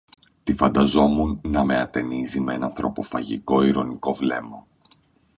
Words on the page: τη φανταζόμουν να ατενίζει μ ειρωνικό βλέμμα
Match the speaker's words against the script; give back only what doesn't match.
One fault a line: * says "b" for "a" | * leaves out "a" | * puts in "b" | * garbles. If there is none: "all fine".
* puts in "με"
* puts in "ένα ανθρωποφαγικό"